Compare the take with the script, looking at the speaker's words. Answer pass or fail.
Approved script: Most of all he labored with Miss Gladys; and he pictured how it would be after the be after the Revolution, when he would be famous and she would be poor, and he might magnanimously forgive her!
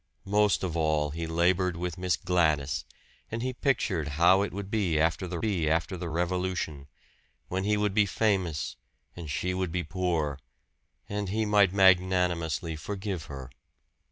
pass